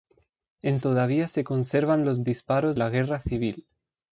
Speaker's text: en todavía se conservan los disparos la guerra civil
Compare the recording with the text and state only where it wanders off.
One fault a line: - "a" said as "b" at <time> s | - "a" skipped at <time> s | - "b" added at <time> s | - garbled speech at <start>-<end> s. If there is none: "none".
none